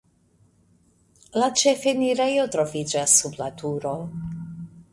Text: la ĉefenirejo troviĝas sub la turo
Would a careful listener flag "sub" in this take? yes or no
no